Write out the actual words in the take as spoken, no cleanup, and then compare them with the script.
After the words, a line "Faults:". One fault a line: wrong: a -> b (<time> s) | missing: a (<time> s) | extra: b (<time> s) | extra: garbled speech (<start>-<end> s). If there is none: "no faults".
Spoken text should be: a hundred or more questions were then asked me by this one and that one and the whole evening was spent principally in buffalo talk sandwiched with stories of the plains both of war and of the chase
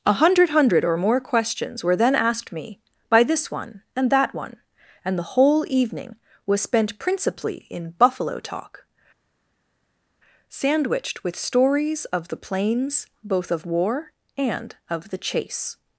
a hundred hundred or more questions were then asked me by this one and that one and the whole evening was spent principally in buffalo talk sandwiched with stories of the plains both of war and of the chase
Faults:
extra: hundred (0.5 s)